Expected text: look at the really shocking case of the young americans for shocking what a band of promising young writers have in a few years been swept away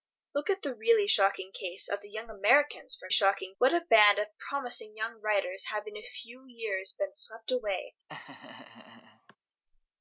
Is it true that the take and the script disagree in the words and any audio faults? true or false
true